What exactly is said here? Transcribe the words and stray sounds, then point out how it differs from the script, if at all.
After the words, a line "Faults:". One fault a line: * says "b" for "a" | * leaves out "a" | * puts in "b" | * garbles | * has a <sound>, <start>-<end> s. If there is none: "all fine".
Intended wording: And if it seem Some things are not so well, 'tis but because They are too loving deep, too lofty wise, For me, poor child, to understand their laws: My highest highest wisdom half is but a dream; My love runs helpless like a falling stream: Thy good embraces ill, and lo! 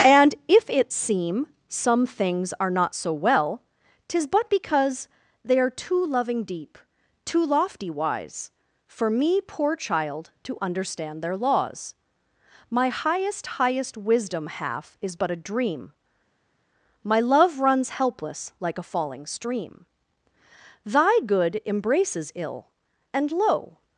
And if it seem Some things are not so well, 'tis but because They are too loving deep, too lofty wise, For me, poor child, to understand their laws: My highest highest wisdom half is but a dream; My love runs helpless like a falling stream: Thy good embraces ill, and lo!
Faults:
all fine